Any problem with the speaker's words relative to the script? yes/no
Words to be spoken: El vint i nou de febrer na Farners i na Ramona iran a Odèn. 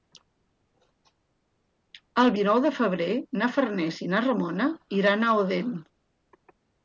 yes